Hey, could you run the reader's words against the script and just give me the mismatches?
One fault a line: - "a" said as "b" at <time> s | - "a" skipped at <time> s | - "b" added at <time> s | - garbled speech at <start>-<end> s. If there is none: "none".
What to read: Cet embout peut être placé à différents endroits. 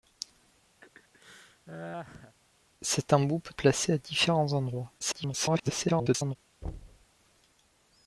- "être" skipped at 3.5 s
- garbled speech at 5.0-6.4 s